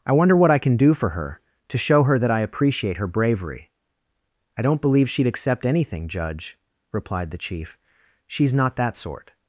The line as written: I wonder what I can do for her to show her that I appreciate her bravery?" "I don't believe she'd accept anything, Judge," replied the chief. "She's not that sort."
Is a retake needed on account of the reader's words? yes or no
no